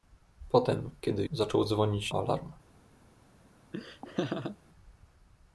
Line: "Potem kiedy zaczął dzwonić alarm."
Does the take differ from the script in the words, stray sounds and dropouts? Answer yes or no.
yes